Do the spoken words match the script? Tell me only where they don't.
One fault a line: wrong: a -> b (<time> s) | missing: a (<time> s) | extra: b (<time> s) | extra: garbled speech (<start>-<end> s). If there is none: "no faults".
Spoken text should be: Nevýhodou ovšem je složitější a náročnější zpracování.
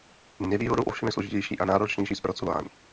no faults